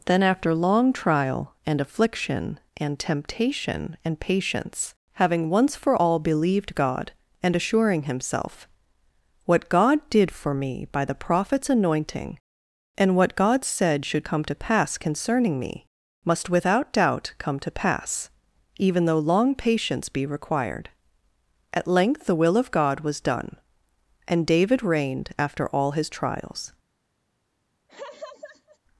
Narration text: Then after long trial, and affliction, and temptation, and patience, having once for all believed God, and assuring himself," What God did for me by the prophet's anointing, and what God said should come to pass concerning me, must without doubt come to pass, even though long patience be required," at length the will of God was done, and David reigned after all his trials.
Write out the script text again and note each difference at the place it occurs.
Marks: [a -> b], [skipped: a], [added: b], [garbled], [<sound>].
Then after long trial, and affliction, and temptation, and patience, having once for all believed God, and assuring himself," What God did for me by the prophet's anointing, and what God said should come to pass concerning me, must without doubt come to pass, even though long patience be required," at length the will of God was done, and David reigned after all his trials. [laugh]